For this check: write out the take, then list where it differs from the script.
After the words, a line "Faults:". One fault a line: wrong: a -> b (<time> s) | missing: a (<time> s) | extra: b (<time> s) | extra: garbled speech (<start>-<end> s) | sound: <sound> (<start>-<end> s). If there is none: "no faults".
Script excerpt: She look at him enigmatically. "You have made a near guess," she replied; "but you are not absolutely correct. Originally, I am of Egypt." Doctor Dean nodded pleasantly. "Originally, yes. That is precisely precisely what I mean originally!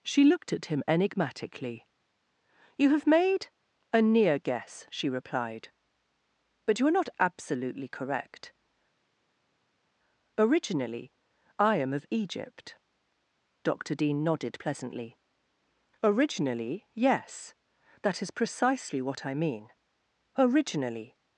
She looked at him enigmatically. "You have made a near guess," she replied; "but you are not absolutely correct. Originally, I am of Egypt." Doctor Dean nodded pleasantly. "Originally, yes. That is precisely what I mean originally!
Faults:
wrong: look -> looked (0.2 s)
missing: precisely (19.0 s)